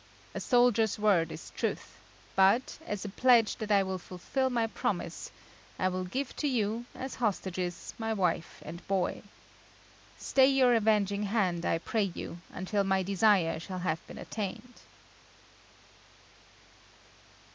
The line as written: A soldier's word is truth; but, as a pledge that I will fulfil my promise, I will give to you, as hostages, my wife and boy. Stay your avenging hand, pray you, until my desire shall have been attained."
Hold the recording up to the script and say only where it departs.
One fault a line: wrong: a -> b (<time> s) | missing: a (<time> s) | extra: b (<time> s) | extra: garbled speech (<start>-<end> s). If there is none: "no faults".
extra: I (11.7 s)